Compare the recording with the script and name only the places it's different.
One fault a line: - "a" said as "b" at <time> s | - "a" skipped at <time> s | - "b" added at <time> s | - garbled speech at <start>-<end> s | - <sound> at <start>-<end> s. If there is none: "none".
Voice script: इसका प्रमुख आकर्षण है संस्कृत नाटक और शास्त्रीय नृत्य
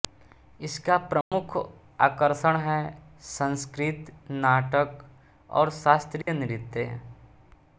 - dropout at 1.2-1.3 s
- dropout at 6.2-6.3 s